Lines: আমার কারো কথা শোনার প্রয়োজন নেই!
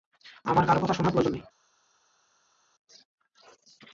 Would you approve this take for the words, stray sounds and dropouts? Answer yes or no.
yes